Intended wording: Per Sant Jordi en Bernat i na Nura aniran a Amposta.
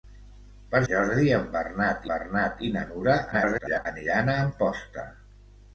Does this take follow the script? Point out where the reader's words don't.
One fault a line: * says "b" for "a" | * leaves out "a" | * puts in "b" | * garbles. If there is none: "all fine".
* leaves out "Sant"
* puts in "Bernat"
* garbles